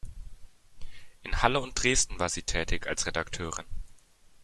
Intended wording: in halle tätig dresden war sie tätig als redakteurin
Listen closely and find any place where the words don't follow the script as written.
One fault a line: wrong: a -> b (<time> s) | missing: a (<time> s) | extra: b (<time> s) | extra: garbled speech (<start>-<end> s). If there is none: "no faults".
wrong: tätig -> und (1.6 s)